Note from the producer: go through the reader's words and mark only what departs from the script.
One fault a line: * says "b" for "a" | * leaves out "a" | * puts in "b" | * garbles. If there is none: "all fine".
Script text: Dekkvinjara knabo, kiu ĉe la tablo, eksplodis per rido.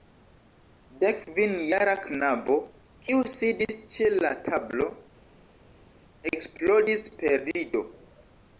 * puts in "sidis"